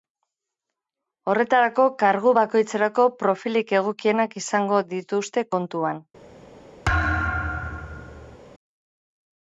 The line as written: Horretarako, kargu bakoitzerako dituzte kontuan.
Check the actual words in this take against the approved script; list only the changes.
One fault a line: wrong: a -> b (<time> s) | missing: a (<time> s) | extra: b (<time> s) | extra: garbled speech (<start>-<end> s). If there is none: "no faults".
extra: profilik egokienak izango (3.2 s)